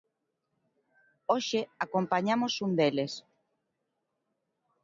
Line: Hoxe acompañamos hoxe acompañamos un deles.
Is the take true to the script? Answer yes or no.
no